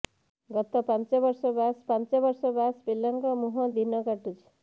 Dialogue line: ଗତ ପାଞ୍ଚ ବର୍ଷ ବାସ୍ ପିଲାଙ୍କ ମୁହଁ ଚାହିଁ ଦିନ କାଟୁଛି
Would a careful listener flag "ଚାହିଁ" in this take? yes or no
yes